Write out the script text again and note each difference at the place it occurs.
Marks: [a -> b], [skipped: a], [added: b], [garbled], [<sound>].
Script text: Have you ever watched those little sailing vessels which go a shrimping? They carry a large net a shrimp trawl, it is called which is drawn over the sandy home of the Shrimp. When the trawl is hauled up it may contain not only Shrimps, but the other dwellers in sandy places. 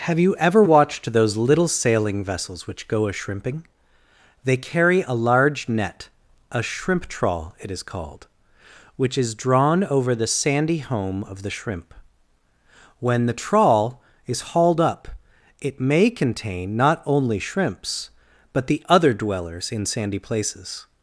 Have you ever watched those little sailing vessels which go a shrimping? They carry a large net a shrimp trawl, it is called which is drawn over the sandy home of the Shrimp. When the trawl is hauled up it may contain not only Shrimps, but the other dwellers in sandy places.